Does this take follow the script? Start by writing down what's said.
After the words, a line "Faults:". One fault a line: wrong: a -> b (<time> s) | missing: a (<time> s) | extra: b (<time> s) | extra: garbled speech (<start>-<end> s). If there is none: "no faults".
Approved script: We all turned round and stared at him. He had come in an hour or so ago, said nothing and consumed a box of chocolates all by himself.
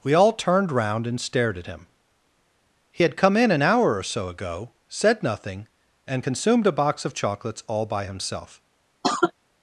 We all turned round and stared at him. He had come in an hour or so ago, said nothing and consumed a box of chocolates all by himself.
Faults:
no faults